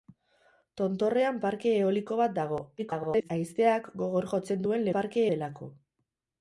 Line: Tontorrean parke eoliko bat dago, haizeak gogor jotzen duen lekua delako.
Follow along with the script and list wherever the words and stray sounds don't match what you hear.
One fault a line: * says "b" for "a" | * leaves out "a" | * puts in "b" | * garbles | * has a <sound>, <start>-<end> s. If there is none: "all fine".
* garbles
* says "parke" for "lekua"